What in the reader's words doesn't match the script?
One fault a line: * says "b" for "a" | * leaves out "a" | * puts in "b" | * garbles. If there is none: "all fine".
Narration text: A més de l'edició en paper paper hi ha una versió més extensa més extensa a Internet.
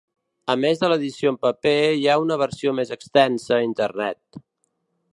* leaves out "paper"
* leaves out "més extensa"